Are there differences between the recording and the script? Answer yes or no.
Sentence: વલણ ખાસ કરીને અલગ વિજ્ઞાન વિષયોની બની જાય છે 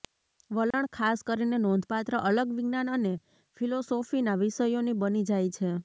yes